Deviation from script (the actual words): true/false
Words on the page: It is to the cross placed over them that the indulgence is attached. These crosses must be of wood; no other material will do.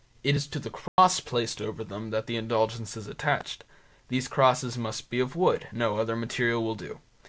false